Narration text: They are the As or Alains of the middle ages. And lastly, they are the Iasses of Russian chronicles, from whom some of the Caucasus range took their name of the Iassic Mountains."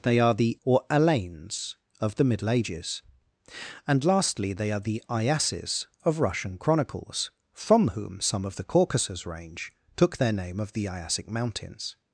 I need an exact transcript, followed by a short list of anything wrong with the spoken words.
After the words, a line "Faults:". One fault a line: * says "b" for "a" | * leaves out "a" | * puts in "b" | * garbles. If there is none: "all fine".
They are the Or Alains of the middle ages. And lastly, they are the Iasses of Russian chronicles, from whom some of the Caucasus range took their name of the Iassic Mountains."
Faults:
* leaves out "As"